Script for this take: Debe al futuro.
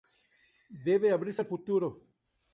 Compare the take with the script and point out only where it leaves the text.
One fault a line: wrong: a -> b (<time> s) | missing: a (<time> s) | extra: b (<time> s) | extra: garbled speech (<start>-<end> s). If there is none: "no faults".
extra: abrirse (1.1 s)